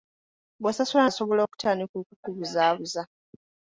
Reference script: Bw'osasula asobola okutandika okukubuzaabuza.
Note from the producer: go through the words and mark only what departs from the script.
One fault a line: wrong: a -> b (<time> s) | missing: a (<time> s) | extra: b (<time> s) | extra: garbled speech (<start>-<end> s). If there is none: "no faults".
no faults